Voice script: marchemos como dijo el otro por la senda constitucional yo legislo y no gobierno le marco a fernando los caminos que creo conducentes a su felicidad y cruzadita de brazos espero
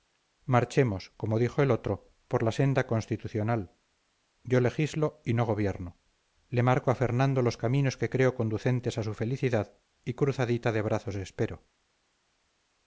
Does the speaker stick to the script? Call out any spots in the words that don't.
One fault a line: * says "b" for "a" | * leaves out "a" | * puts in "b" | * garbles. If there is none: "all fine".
all fine